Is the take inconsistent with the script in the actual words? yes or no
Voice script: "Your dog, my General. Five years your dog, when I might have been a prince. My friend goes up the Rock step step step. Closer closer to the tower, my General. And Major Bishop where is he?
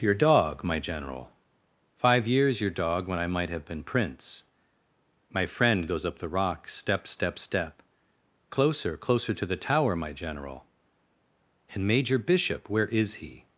yes